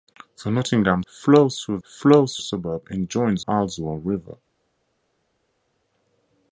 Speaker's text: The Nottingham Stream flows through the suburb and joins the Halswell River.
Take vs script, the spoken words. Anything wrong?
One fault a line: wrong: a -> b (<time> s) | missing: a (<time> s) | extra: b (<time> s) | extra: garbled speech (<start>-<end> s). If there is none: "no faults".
missing: Stream (1.0 s)
wrong: the -> flows (1.8 s)
missing: the (3.4 s)